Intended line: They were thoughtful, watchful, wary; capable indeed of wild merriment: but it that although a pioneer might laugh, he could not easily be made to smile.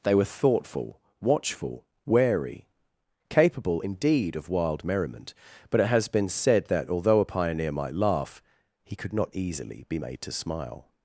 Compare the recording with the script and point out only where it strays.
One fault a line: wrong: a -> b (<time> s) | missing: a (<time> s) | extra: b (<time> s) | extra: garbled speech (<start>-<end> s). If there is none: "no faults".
extra: has been said (5.9 s)